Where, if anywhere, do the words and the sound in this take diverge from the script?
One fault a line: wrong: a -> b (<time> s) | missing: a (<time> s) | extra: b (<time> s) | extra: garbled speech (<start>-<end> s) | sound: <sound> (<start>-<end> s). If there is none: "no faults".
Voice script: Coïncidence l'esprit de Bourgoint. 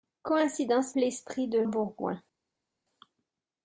no faults